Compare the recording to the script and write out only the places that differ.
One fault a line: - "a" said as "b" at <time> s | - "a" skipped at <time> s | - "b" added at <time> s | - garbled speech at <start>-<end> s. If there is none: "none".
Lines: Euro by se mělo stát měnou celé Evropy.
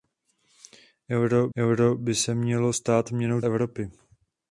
- "euro" added at 1.6 s
- "celé" skipped at 3.4 s